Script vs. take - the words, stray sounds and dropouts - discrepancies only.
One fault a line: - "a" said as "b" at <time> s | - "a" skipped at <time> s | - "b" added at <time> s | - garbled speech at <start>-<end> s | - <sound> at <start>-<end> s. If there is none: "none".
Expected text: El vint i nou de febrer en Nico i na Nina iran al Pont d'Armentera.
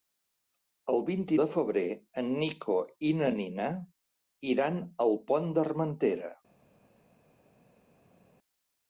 - "nou" skipped at 1.4 s